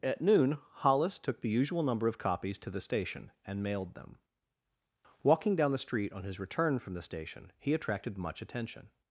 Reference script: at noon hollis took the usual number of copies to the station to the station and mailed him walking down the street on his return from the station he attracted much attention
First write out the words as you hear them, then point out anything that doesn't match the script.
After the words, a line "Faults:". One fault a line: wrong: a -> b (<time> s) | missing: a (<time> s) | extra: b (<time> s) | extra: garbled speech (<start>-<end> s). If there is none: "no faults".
at noon hollis took the usual number of copies to the station and mailed them walking down the street on his return from the station he attracted much attention
Faults:
missing: to the station (3.3 s)
wrong: him -> them (3.9 s)